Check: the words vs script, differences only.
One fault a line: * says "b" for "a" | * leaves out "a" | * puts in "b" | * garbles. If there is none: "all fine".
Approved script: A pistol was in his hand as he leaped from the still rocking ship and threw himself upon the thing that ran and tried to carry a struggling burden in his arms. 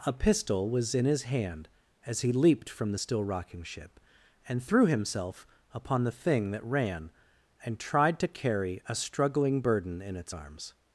* says "its" for "his"